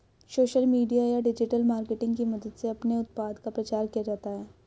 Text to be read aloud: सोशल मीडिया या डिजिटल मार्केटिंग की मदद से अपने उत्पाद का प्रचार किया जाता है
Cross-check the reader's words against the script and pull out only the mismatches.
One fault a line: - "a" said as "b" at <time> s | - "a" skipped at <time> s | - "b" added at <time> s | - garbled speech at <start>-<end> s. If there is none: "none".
none